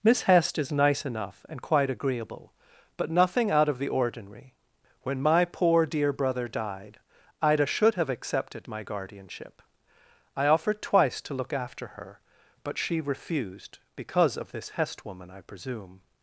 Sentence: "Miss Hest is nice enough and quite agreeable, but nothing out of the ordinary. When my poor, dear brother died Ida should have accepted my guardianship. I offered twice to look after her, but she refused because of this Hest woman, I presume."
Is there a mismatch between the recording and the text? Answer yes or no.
no